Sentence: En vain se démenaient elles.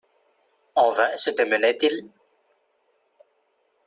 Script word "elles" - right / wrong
wrong